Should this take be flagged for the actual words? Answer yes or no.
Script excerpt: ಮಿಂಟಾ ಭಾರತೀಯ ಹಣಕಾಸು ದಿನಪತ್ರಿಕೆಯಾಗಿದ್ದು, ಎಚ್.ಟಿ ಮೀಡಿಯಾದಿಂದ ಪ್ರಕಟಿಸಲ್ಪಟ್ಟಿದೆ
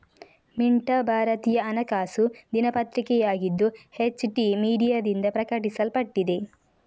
no